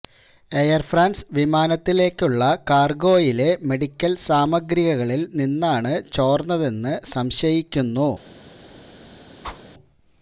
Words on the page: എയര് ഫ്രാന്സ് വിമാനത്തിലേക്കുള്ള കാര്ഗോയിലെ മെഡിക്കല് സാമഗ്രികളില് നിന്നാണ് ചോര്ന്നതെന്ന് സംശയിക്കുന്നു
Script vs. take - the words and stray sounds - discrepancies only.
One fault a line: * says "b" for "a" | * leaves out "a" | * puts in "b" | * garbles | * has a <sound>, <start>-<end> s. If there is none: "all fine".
* has a whoosh, 9.4-9.6 s